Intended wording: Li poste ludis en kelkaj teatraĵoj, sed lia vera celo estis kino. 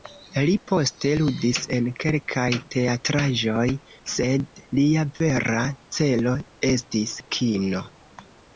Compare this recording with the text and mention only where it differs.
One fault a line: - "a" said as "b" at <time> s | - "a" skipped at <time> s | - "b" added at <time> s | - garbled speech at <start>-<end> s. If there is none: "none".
none